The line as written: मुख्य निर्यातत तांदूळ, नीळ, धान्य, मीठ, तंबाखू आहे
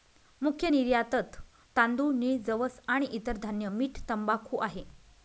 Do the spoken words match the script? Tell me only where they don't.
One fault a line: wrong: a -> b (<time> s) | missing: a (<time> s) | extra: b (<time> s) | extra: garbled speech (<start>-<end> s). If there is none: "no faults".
extra: जवस आणि इतर (2.5 s)